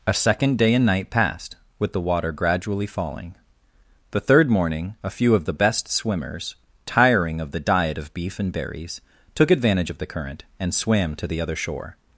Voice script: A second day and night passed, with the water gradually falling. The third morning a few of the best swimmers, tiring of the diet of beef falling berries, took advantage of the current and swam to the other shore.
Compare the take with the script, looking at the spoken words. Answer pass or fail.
fail